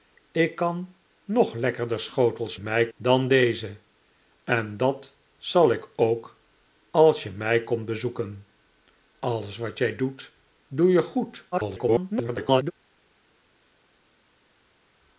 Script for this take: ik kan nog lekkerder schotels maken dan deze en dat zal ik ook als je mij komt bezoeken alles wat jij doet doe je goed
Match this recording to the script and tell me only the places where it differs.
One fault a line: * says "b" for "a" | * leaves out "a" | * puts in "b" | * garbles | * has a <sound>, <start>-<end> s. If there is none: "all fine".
* says "mij" for "maken"
* garbles